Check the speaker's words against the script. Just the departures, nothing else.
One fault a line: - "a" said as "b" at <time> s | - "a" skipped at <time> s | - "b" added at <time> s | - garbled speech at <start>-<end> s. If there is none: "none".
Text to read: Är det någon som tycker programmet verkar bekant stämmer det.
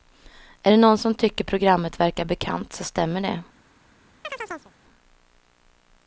- "så" added at 2.7 s